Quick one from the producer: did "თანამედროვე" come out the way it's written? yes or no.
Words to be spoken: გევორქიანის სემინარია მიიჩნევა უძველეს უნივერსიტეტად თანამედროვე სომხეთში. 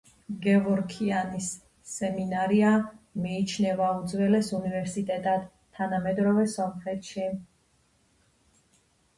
yes